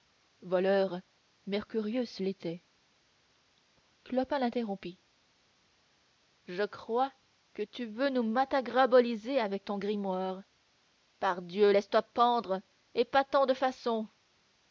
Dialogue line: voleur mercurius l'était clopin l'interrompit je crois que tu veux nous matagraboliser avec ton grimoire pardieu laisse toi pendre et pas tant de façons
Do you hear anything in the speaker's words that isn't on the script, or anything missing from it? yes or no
no